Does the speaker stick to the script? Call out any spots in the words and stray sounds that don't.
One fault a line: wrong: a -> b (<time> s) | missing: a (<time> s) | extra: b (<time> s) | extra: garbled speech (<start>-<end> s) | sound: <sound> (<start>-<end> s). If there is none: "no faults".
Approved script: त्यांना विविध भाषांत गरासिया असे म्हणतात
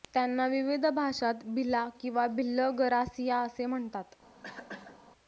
extra: भिला किंवा भिल्ल (1.4 s)
sound: cough (4.4-5.0 s)